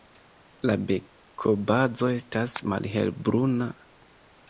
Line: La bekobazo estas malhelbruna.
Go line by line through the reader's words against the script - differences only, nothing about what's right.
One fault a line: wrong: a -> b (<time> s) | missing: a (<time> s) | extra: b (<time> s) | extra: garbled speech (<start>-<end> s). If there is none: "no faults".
no faults